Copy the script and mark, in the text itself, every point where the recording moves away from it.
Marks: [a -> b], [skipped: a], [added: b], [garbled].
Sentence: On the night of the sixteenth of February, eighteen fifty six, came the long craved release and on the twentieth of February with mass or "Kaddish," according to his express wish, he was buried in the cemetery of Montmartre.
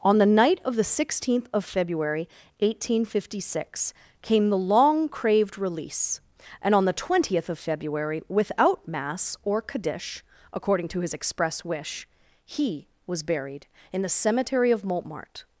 On the night of the sixteenth of February, eighteen fifty six, came the long craved release and on the twentieth of February [with -> without] mass or "Kaddish," according to his express wish, he was buried in the cemetery of Montmartre.